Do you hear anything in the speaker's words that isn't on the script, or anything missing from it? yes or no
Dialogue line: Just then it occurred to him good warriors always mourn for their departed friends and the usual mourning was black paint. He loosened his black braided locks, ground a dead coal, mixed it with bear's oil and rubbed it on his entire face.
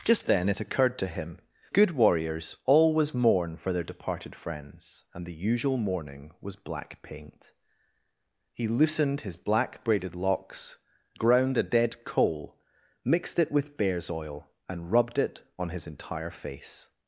no